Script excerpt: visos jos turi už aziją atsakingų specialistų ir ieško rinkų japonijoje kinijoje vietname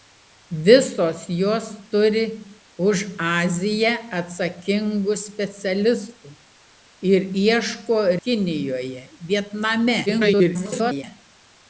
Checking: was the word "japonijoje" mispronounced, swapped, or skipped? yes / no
yes